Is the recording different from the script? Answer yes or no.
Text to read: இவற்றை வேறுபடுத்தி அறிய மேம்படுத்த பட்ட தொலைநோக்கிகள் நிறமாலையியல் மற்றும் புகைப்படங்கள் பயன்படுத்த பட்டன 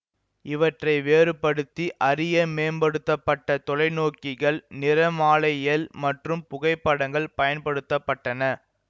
no